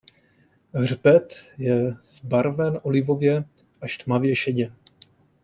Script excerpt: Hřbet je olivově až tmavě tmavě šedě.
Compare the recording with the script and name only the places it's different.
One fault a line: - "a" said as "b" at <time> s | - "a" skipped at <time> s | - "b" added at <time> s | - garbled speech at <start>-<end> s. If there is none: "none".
- "zbarven" added at 2.0 s
- "tmavě" skipped at 4.3 s